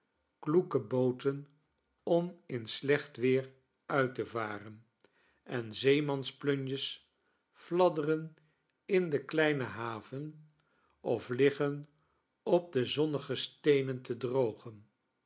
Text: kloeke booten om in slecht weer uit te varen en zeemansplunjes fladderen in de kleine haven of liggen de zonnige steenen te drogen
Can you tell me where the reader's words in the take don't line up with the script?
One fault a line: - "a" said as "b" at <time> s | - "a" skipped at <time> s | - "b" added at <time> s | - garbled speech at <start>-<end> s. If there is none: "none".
- "op" added at 12.4 s